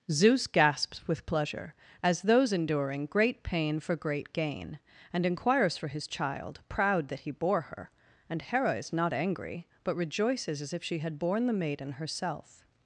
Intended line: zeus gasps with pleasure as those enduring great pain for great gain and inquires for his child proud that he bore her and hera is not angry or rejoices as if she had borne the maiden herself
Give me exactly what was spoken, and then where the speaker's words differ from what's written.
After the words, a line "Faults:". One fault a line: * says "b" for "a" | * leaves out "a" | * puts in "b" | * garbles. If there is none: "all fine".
zeus gasps with pleasure as those enduring great pain for great gain and inquires for his child proud that he bore her and hera is not angry but rejoices as if she had borne the maiden herself
Faults:
* says "but" for "or"